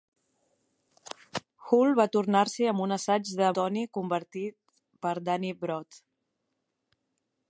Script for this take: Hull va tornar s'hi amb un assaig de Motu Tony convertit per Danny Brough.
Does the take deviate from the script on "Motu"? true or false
true